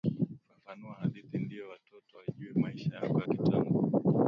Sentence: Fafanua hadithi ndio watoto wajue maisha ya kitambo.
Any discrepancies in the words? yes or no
yes